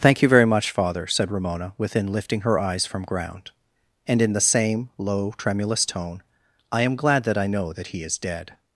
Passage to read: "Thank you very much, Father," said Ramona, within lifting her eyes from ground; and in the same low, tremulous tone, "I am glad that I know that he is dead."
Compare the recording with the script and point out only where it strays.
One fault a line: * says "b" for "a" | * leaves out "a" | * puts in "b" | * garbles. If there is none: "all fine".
all fine